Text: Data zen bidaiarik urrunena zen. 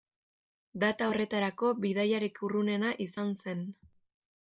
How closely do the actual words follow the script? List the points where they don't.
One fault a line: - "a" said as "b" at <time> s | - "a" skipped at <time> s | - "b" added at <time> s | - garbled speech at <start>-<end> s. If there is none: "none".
- "zen" said as "horretarako" at 1.1 s
- "izan" added at 3.1 s